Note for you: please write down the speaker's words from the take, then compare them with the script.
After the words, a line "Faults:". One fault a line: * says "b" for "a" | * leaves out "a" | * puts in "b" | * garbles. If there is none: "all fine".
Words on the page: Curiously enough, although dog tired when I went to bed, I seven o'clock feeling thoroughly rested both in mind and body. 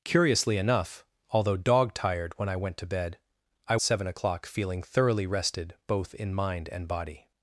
Curiously enough, although dog tired when I went to bed, I seven o'clock feeling thoroughly rested both in mind and body.
Faults:
all fine